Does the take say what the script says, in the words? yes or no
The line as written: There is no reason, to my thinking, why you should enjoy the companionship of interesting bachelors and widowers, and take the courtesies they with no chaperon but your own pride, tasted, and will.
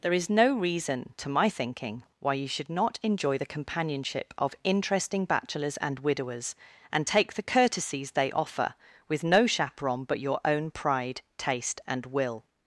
no